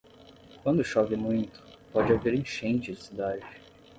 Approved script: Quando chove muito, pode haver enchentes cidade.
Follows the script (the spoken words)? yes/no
yes